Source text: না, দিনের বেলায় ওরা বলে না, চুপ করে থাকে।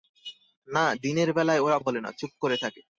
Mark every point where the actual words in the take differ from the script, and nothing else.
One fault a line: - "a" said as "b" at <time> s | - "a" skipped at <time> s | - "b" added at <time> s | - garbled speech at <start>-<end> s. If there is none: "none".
none